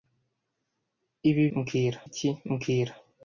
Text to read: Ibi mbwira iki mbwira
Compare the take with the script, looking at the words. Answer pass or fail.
pass